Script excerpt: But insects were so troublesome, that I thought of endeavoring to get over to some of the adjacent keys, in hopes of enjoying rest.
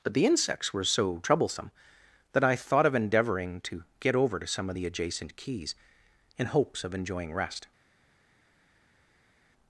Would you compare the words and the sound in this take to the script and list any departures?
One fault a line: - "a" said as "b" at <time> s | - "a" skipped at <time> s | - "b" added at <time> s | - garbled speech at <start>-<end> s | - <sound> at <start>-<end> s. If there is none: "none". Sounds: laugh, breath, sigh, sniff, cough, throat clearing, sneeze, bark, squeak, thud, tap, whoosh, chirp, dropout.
- "the" added at 0.1 s